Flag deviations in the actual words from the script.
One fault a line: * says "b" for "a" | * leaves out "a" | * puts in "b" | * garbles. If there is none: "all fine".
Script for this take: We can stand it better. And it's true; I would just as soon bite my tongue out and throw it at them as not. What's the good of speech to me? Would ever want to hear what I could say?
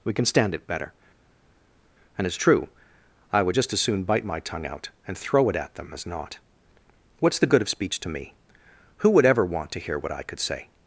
* puts in "Who"